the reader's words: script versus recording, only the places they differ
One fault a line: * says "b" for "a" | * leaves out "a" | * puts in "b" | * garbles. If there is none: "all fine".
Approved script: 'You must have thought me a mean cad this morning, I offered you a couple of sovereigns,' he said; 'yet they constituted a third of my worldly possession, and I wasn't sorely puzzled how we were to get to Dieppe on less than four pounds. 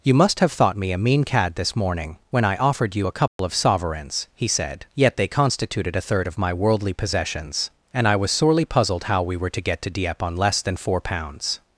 * puts in "when"
* says "possessions" for "possession"
* says "was" for "wasn't"